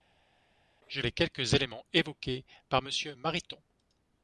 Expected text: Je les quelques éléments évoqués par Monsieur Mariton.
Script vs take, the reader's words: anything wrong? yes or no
no